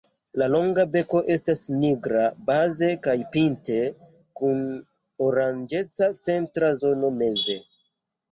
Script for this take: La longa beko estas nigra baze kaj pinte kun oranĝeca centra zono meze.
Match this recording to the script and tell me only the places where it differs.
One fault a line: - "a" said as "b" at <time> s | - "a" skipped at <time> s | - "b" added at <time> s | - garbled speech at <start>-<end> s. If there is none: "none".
none